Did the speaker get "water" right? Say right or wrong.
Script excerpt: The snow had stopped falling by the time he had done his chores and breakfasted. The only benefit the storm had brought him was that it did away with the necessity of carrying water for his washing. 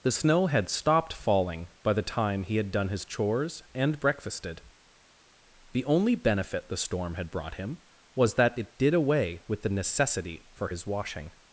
wrong